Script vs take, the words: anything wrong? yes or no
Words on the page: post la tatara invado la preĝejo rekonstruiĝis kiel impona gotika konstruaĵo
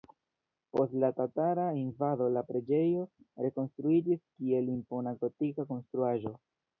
no